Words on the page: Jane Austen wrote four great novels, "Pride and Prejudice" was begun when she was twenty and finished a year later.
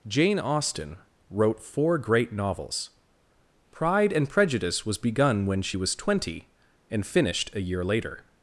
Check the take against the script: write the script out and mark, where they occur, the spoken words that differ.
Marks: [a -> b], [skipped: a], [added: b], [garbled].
Jane Austen wrote four great novels, "Pride and Prejudice" was begun when she was twenty and finished a year later.